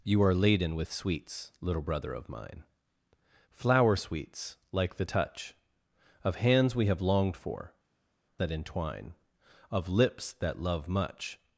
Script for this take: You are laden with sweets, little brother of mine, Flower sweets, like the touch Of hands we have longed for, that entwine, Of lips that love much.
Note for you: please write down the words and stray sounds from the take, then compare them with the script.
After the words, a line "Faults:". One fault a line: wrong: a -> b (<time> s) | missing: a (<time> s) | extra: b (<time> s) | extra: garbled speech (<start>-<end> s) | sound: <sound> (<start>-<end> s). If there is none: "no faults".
You are laden with sweets, little brother of mine, Flower sweets, like the touch Of hands we have longed for, that entwine, Of lips that love much.
Faults:
no faults